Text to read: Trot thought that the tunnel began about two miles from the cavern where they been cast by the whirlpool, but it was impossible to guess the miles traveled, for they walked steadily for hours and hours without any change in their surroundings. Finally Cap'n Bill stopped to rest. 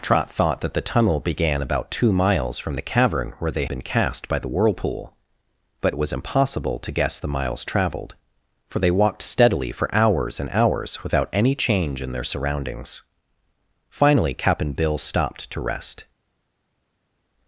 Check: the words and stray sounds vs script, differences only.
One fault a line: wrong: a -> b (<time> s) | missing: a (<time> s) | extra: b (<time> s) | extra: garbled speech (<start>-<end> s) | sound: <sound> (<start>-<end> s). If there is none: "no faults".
no faults